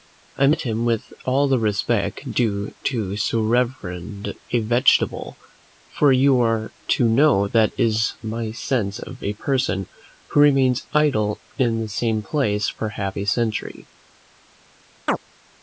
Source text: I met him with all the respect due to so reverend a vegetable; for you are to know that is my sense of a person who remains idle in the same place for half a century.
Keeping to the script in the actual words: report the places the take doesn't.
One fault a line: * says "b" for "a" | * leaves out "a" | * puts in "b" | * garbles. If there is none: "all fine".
all fine